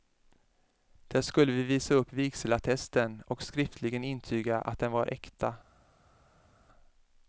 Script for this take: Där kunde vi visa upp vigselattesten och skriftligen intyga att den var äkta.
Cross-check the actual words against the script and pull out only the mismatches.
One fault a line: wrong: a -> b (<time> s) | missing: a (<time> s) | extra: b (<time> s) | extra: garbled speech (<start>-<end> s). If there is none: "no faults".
wrong: kunde -> skulle (1.2 s)